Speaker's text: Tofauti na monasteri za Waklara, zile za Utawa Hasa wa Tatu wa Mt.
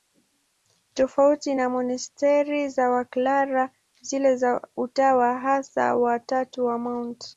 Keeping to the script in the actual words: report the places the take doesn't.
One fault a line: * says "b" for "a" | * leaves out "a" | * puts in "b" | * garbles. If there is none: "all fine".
all fine